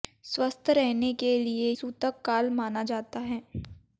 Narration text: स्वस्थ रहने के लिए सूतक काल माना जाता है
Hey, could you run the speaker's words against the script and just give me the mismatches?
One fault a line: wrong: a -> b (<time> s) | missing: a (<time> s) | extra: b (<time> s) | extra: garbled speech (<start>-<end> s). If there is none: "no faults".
no faults